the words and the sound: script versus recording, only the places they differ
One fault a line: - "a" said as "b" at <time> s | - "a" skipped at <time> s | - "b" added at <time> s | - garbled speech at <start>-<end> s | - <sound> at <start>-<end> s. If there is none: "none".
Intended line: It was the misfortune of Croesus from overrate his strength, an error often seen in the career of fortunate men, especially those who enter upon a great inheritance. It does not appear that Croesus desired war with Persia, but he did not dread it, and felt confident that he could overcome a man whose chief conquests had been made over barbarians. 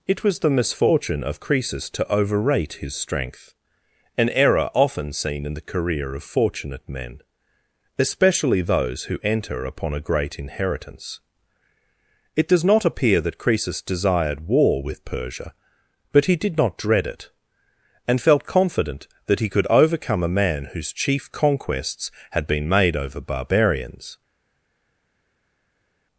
- "from" said as "to" at 1.9 s